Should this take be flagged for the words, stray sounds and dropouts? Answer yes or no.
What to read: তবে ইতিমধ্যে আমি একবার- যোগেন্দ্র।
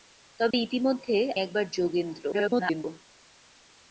yes